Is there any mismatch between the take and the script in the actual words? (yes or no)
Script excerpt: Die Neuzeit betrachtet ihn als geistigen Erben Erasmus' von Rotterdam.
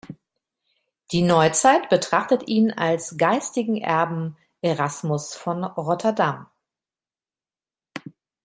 no